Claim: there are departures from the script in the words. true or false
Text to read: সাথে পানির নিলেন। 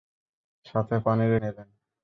false